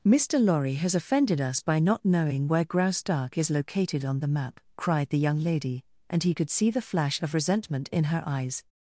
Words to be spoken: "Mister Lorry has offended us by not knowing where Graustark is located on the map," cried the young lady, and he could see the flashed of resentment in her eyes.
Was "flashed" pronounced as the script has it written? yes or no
no